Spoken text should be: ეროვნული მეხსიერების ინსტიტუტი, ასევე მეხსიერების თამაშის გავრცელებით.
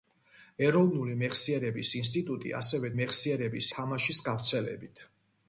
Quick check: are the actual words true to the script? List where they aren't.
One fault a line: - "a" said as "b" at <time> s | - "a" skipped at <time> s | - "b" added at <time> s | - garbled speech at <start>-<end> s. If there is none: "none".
none